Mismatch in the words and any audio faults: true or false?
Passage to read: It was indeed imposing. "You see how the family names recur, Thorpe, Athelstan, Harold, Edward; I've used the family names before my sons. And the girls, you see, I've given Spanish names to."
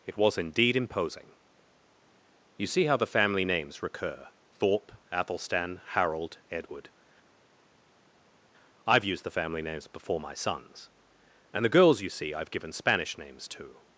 false